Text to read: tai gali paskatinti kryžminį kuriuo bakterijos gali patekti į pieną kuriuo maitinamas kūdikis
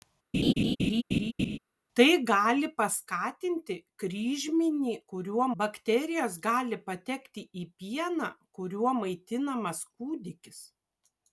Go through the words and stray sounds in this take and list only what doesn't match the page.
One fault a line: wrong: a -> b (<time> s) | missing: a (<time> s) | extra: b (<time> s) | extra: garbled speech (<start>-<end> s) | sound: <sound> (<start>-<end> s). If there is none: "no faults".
sound: laugh (0.3-1.6 s)